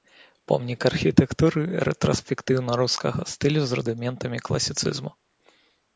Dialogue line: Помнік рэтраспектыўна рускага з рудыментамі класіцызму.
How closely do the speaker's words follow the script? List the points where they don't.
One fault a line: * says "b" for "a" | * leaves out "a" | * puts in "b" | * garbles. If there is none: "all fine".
* puts in "архітэктуры"
* puts in "стылю"